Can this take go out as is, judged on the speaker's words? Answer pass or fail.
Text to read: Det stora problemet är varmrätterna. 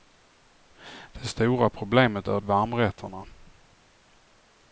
pass